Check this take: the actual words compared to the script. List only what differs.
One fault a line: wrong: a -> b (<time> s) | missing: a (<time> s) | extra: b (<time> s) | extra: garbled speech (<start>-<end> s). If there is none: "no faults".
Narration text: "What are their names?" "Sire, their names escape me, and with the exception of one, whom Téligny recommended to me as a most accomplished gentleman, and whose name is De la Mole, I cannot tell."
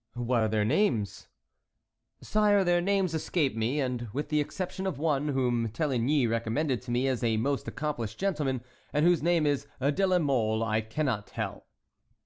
no faults